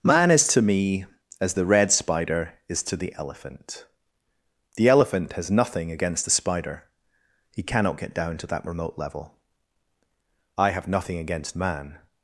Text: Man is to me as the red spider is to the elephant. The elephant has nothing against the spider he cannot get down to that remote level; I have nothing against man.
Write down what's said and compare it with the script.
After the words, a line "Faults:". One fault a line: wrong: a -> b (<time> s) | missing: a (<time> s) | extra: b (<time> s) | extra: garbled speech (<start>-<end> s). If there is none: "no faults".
Man is to me as the red spider is to the elephant. The elephant has nothing against the spider he cannot get down to that remote level; I have nothing against man.
Faults:
no faults